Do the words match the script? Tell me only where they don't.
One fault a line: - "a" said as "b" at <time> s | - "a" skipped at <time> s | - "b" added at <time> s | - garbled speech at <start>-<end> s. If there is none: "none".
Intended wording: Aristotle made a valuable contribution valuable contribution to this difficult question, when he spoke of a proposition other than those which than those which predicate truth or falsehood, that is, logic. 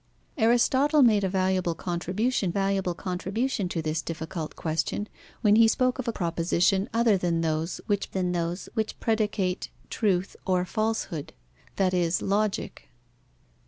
none